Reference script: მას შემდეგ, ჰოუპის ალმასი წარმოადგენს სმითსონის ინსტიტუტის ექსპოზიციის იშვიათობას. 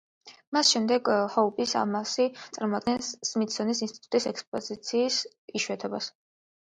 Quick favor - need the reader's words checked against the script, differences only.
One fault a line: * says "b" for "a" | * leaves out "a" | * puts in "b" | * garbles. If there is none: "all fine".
all fine